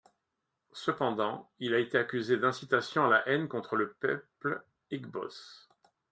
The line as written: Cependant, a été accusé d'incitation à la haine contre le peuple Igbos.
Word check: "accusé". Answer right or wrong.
right